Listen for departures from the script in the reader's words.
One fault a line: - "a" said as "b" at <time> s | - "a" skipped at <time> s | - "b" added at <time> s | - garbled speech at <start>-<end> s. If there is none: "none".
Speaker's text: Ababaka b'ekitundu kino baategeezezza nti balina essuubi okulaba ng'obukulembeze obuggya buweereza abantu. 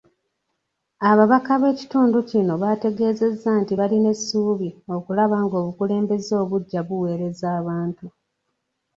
none